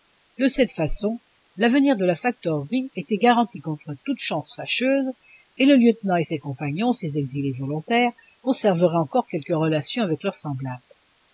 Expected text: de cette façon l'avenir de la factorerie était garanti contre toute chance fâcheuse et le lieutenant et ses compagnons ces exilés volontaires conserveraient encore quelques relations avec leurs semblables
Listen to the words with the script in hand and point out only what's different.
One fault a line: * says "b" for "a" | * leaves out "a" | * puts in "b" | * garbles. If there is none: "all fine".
all fine